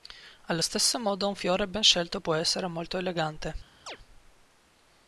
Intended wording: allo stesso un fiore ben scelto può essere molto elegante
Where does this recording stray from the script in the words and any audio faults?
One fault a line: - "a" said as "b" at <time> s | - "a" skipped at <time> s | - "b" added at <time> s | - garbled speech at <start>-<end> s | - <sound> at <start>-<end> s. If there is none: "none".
- "modo" added at 1.0 s
- chirp at 3.9-4.0 s